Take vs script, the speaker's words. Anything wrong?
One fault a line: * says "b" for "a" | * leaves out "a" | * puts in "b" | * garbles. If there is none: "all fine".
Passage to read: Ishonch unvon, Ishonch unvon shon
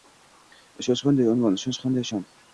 * puts in "qanday"
* says "qanday" for "unvon"